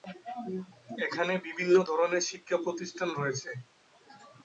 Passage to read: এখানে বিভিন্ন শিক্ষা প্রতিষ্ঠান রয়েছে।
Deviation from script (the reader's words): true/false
true